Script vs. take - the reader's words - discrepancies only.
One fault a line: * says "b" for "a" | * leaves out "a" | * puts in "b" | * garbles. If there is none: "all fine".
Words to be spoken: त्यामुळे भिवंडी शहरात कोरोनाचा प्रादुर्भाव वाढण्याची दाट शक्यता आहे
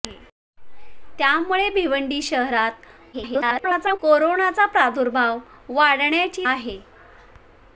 * garbles
* leaves out "दाट शक्यता"